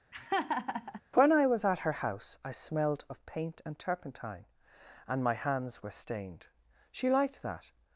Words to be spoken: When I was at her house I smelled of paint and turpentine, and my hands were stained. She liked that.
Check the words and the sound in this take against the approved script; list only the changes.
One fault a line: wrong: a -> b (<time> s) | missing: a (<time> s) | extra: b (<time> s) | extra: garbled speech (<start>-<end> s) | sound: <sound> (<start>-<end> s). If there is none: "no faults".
sound: laugh (0.1-1.0 s)